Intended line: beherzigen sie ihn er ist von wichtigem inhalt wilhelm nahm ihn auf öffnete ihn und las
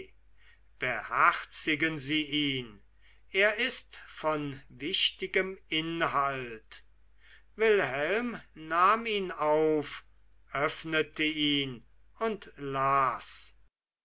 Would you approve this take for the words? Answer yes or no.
yes